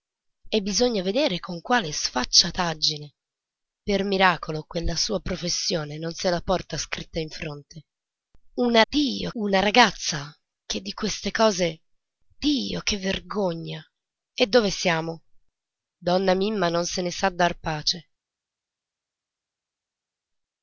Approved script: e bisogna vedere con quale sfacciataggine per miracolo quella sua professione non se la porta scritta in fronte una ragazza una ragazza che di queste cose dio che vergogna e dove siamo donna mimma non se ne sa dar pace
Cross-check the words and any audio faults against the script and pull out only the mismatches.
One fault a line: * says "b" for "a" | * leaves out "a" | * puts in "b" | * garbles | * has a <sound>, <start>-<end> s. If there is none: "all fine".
* says "dio" for "ragazza"